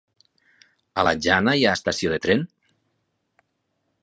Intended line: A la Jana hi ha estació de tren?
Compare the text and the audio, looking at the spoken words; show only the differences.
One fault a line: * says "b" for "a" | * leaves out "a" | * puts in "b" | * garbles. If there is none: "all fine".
all fine